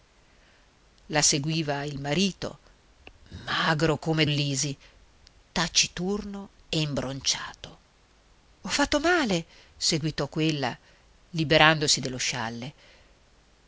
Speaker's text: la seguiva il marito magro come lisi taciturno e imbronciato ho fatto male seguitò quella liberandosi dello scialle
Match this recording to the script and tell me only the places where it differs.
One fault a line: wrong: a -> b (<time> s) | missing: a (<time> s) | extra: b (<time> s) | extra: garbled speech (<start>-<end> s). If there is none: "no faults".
no faults